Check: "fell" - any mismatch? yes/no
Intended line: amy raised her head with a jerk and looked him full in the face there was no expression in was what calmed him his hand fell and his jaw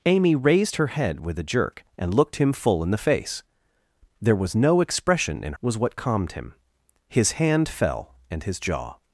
no